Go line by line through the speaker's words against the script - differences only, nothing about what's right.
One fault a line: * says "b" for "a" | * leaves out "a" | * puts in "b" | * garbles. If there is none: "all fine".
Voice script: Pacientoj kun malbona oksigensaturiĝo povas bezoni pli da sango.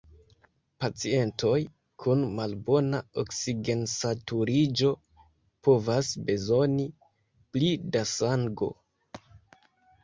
all fine